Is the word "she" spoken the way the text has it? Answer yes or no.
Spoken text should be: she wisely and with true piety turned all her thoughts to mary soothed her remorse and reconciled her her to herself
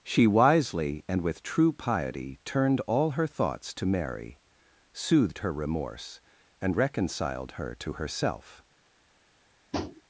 yes